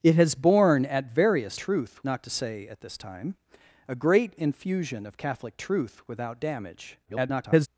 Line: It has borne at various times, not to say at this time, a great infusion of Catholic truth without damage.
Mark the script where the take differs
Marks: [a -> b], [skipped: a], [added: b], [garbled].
It has borne at various [times, -> truth] not to say at this time, a great infusion of Catholic truth without damage. [garbled]